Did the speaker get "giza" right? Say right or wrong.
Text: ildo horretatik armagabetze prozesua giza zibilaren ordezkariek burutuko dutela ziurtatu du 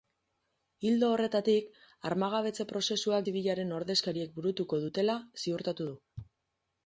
wrong